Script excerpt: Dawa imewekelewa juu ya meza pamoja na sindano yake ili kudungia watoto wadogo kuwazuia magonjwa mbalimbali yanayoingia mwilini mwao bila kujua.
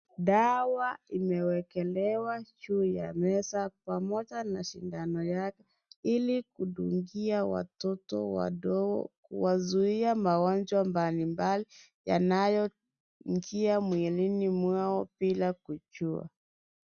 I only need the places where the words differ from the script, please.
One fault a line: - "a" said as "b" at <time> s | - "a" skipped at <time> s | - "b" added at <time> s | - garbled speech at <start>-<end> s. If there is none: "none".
none